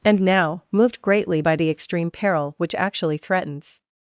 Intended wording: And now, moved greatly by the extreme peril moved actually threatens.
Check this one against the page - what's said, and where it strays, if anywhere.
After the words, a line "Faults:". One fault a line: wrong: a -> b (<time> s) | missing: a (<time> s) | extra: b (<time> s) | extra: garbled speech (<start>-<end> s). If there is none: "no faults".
And now, moved greatly by the extreme peril which actually threatens.
Faults:
wrong: moved -> which (2.6 s)